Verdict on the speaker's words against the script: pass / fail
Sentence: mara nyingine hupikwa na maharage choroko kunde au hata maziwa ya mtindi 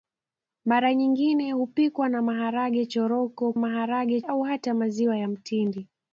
fail